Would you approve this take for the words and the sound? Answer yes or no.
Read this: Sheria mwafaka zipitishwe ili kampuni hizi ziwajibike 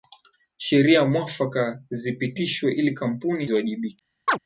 no